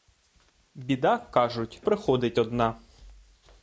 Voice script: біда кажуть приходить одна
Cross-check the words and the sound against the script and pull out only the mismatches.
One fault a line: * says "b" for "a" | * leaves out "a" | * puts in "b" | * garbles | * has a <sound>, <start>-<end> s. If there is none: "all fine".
all fine